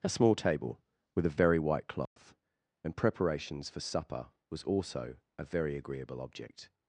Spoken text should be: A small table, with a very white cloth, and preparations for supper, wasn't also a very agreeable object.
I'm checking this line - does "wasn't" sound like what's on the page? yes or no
no